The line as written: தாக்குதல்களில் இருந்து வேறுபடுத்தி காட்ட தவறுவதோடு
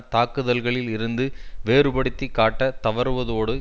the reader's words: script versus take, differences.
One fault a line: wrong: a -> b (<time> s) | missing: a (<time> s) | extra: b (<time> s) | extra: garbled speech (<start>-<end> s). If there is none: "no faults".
no faults